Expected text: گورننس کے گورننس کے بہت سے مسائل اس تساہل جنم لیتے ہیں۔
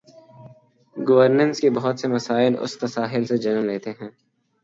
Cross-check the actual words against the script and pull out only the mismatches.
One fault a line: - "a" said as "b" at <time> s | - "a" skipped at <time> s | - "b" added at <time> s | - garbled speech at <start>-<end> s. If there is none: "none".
- "گورننس کے" skipped at 1.7 s
- "سے" added at 3.2 s